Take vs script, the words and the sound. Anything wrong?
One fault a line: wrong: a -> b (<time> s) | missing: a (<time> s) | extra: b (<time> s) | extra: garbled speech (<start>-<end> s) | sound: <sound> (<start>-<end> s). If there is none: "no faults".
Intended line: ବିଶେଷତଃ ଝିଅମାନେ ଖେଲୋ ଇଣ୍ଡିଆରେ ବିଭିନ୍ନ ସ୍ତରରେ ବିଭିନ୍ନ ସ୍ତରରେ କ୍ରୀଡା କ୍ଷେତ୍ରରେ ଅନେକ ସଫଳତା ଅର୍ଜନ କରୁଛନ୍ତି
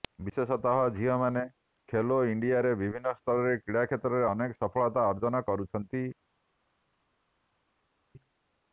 missing: ବିଭିନ୍ନ ସ୍ତରରେ (3.5 s)